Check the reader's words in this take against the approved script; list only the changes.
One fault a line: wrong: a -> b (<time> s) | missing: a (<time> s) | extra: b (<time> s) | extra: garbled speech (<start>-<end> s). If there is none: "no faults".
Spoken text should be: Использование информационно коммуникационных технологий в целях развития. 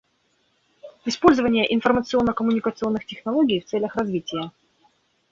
no faults